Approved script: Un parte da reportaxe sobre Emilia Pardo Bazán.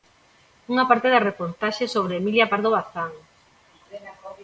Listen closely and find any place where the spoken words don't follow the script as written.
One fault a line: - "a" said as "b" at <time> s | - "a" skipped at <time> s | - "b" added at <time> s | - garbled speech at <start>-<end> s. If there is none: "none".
- "Un" said as "Unha" at 0.7 s